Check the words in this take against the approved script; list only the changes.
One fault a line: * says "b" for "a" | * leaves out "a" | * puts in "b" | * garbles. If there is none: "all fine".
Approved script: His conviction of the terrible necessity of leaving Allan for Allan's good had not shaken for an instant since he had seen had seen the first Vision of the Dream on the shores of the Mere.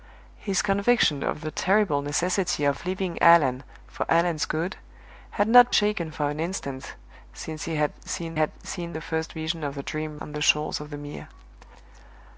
all fine